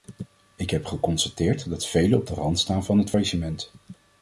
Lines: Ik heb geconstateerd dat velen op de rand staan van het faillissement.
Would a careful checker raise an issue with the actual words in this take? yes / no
no